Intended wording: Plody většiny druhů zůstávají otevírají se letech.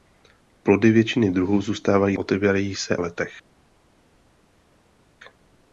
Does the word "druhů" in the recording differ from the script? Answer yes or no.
no